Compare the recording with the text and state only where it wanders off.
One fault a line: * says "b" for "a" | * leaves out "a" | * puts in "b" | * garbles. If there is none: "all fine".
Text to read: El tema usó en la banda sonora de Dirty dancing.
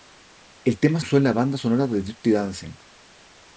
all fine